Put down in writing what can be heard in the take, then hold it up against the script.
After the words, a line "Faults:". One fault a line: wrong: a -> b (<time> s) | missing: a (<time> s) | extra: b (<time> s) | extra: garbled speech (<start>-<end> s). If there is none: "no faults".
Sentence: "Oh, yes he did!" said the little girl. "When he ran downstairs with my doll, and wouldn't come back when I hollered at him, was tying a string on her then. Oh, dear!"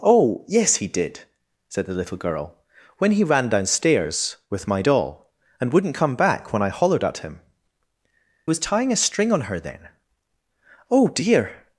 "Oh, yes he did!" said the little girl. "When he ran downstairs with my doll, and wouldn't come back when I hollered at him, was tying a string on her then. Oh, dear!"
Faults:
no faults